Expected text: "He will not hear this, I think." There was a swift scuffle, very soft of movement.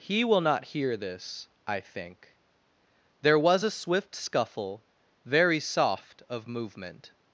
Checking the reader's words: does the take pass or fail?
pass